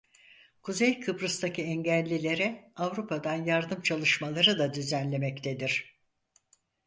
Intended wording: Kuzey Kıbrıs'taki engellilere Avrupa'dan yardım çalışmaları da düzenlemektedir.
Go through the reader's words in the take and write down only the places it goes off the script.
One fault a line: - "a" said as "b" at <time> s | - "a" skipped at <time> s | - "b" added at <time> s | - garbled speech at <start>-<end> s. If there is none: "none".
none